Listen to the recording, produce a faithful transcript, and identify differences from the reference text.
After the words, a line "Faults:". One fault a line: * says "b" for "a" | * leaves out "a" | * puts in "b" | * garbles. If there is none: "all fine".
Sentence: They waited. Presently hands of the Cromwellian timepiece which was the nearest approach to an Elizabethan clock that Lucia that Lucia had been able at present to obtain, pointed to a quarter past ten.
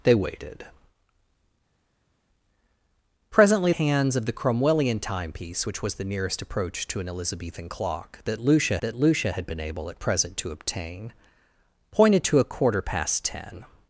They waited. Presently hands of the Cromwellian timepiece which was the nearest approach to an Elizabethan clock that Lucia that Lucia had been able at present to obtain, pointed to a quarter past ten.
Faults:
all fine